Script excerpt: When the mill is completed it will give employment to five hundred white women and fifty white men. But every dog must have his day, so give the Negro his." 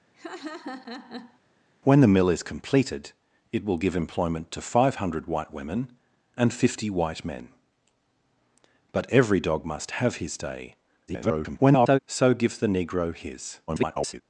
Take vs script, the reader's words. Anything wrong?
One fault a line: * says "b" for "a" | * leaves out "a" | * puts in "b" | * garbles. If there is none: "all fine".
* garbles
* garbles